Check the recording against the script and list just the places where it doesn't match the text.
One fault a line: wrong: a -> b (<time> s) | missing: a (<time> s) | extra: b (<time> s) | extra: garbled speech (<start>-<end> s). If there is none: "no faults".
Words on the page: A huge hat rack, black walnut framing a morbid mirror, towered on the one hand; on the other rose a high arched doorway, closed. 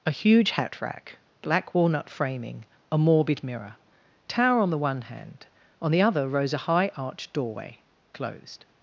wrong: towered -> tower (4.3 s)